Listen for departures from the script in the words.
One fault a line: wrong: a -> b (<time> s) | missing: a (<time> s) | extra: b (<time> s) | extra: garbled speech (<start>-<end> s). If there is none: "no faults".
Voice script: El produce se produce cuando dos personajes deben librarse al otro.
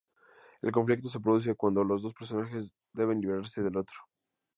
wrong: produce -> conflicto (0.7 s)
extra: los (1.8 s)
wrong: al -> del (3.6 s)